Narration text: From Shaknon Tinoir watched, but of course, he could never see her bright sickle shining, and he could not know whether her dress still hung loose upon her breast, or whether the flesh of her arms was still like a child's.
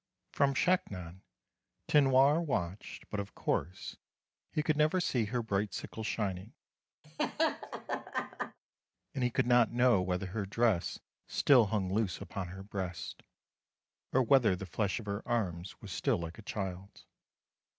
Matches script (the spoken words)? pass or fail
pass